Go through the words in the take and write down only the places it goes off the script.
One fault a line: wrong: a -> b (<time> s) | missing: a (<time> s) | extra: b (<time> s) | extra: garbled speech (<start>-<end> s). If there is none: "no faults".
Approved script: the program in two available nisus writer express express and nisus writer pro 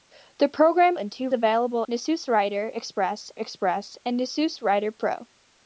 no faults